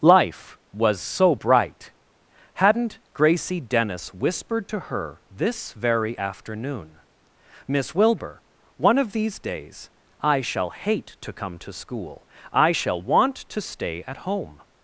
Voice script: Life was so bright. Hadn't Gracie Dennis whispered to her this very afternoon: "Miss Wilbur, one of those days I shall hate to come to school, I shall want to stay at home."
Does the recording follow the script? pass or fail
fail